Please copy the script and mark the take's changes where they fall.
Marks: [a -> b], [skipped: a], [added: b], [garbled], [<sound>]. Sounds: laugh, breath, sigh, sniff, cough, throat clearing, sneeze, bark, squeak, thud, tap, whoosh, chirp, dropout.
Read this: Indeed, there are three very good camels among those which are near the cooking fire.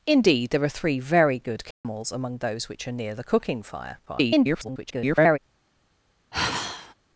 Indeed, there are three very good camels [dropout] among those which are near the cooking fire. [garbled] [sigh]